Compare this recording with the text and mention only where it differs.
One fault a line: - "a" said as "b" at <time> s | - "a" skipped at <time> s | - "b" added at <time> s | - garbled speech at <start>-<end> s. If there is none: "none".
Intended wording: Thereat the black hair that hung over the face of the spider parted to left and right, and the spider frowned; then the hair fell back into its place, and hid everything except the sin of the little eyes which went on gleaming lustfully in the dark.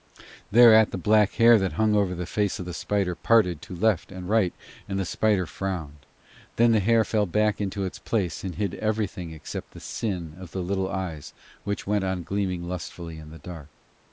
none